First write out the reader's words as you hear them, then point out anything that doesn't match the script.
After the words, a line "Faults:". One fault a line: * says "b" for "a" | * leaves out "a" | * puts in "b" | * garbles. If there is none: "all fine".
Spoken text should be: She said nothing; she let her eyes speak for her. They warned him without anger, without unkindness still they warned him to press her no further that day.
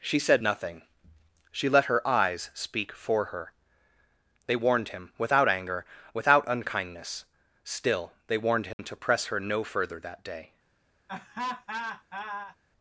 She said nothing; she let her eyes speak for her. They warned him without anger, without unkindness still they warned him to press her no further that day.
Faults:
all fine